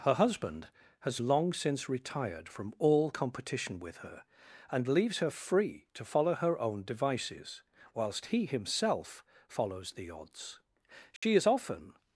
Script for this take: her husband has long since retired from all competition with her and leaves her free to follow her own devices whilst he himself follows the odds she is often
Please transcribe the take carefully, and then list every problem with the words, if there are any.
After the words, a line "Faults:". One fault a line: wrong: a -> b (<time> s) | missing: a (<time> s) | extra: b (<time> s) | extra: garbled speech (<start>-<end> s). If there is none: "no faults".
her husband has long since retired from all competition with her and leaves her free to follow her own devices whilst he himself follows the odds she is often
Faults:
no faults